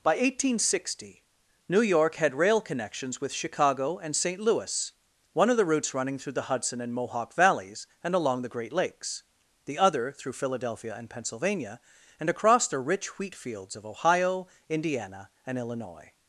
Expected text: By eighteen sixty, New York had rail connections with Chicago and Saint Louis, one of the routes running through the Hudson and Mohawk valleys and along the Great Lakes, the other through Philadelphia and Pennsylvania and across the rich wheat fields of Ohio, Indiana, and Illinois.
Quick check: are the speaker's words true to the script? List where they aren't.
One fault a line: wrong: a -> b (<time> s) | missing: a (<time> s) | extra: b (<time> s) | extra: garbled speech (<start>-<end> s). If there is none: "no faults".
no faults